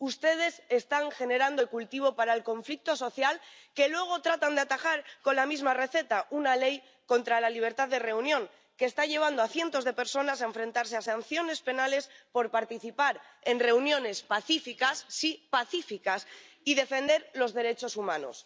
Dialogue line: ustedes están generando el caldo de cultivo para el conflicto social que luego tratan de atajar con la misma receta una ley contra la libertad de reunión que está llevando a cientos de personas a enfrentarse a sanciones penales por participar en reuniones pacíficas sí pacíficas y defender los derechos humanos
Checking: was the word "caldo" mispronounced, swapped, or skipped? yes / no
yes